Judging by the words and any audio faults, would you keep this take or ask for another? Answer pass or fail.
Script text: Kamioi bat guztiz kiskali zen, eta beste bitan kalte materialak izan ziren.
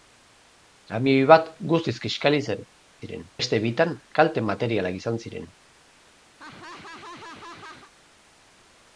fail